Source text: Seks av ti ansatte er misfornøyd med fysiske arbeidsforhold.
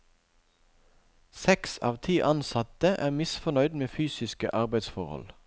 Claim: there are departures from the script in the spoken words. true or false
false